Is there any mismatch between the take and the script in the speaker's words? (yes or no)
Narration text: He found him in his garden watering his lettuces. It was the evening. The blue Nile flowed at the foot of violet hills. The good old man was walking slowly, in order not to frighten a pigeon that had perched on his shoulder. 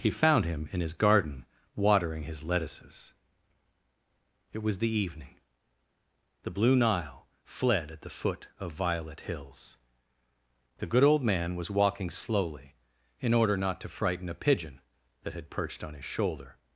yes